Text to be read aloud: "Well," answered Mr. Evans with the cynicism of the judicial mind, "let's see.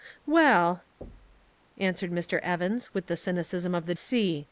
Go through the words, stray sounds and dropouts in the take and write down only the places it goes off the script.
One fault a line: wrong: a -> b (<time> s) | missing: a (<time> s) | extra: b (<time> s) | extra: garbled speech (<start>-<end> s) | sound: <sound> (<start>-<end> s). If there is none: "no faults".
sound: thud (1.0-1.5 s)
missing: judicial mind let's (3.9 s)